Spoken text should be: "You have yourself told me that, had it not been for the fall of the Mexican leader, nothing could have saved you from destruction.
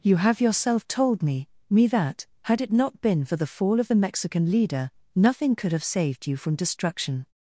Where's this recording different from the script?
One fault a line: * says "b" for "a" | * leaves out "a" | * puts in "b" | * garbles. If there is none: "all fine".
* puts in "me"